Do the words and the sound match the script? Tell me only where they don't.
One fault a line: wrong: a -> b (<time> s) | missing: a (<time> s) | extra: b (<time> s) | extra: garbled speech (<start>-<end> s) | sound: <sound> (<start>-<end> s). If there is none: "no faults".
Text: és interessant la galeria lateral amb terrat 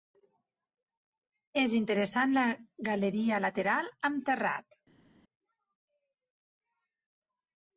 no faults